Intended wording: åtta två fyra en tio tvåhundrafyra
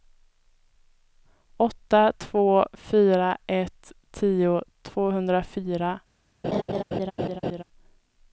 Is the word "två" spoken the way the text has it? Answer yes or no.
yes